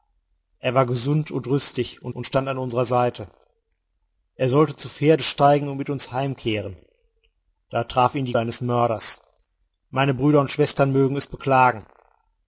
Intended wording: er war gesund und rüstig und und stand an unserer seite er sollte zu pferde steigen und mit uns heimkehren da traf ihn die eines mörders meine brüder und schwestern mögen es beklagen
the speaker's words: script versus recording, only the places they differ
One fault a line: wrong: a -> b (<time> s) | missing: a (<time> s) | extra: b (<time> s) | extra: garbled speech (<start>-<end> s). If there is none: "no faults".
no faults